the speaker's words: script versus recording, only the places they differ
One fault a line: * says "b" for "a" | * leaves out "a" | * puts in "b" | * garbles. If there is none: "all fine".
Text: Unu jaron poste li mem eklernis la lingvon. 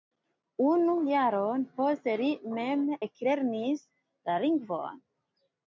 all fine